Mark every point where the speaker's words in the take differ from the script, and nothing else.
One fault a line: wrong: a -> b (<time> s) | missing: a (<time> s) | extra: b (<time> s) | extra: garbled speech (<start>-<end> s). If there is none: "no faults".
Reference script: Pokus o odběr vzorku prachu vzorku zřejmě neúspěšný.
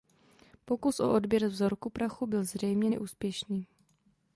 wrong: vzorku -> byl (2.3 s)